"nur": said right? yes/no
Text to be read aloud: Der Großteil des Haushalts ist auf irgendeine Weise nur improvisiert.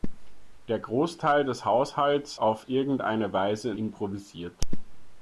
no